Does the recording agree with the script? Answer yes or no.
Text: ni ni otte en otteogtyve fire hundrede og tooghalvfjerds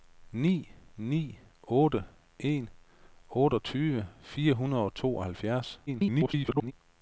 no